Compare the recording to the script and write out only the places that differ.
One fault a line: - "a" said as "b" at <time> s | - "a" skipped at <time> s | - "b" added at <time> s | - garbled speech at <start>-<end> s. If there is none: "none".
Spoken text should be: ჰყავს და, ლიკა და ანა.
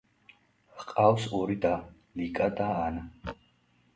- "ორი" added at 1.4 s